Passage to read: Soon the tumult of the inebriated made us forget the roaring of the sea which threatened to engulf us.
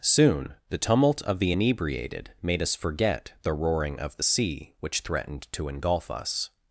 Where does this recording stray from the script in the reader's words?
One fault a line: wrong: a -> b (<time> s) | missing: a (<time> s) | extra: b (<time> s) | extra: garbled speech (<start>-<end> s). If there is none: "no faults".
no faults